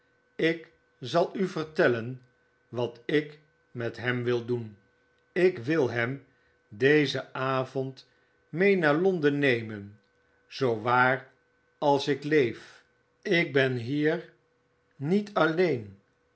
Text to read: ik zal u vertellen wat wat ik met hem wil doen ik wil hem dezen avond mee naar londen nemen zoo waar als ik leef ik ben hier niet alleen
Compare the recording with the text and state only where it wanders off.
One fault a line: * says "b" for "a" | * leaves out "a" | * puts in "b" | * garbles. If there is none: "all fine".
* leaves out "wat"